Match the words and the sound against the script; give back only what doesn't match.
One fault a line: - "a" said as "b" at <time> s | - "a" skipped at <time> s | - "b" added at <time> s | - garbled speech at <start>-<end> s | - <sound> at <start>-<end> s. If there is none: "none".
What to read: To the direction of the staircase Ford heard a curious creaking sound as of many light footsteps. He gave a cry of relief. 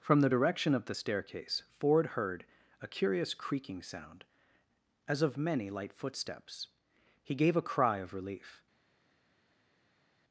- "To" said as "From" at 0.0 s